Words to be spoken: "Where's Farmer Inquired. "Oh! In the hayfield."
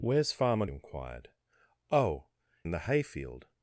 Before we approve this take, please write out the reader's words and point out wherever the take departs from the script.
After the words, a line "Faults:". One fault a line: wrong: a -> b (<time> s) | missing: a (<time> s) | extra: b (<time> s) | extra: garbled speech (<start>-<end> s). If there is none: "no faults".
"Where's Farmer Inquired. "Oh! In the hayfield."
Faults:
no faults